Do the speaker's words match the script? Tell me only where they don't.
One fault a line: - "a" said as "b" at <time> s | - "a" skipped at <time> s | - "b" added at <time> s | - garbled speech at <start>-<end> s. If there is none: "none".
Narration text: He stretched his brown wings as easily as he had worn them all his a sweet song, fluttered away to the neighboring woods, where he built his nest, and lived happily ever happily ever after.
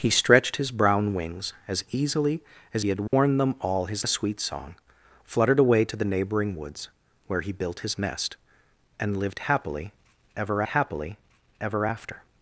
none